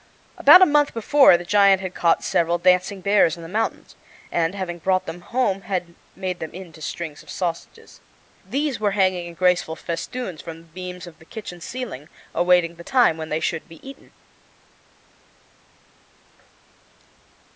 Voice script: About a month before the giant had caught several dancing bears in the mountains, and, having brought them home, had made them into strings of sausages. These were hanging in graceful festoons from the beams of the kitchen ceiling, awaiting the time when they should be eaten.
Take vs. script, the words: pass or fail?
pass